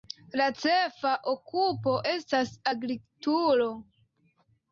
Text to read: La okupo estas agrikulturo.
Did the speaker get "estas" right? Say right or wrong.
right